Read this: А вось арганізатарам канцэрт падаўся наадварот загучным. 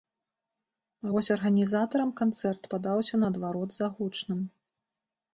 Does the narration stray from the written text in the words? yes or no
no